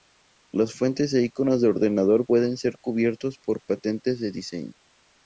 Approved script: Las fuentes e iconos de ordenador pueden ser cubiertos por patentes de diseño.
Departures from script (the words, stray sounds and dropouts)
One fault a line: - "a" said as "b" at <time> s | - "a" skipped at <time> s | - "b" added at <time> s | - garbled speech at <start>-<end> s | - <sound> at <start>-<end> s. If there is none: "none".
none